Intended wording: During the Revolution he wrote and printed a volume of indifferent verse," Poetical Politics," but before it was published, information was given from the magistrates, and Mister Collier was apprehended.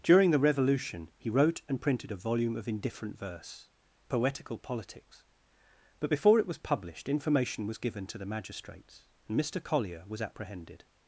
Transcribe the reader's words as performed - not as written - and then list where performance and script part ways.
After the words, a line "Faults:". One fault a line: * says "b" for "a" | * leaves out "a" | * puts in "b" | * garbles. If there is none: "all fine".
During the Revolution he wrote and printed a volume of indifferent verse," Poetical Politics," but before it was published, information was given to the magistrates, and Mister Collier was apprehended.
Faults:
* says "to" for "from"